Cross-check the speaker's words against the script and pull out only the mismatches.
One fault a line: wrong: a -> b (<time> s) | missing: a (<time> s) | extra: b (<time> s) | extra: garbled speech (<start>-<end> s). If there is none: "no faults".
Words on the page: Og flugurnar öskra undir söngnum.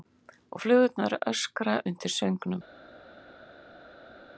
no faults